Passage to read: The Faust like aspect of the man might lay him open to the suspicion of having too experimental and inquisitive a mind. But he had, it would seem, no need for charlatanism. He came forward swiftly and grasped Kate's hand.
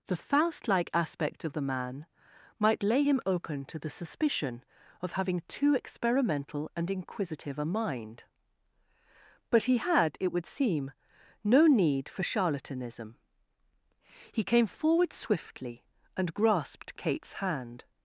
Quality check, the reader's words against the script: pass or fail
pass